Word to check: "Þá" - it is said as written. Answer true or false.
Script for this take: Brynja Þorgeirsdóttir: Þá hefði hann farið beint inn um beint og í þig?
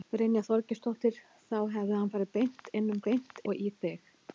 true